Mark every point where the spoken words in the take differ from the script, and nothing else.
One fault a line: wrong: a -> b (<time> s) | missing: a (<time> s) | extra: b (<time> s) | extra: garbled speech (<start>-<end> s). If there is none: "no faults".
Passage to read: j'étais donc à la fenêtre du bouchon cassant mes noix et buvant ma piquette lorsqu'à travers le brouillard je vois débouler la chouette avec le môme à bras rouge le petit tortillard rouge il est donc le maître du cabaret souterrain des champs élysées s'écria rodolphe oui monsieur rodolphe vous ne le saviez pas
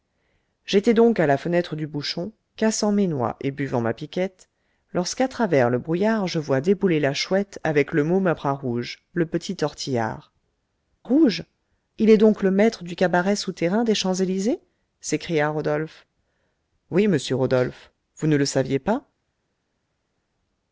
no faults